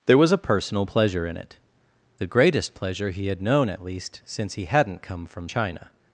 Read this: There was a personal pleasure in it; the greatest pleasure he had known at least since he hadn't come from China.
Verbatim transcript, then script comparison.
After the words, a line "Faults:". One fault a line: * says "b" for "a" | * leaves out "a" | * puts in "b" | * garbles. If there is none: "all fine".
There was a personal pleasure in it; the greatest pleasure he had known at least since he hadn't come from China.
Faults:
all fine